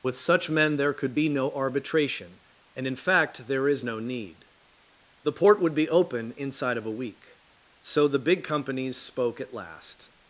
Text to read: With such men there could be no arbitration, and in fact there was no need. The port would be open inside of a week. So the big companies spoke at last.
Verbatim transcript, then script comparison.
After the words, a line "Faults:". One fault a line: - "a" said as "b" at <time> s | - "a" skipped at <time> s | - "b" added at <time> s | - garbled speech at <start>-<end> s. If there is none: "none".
With such men there could be no arbitration, and in fact there is no need. The port would be open inside of a week. So the big companies spoke at last.
Faults:
- "was" said as "is" at 3.7 s